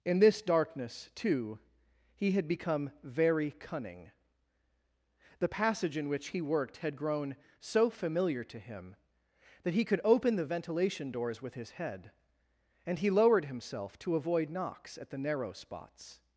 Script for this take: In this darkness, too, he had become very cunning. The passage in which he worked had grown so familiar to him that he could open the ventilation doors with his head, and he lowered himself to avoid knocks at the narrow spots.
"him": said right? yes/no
yes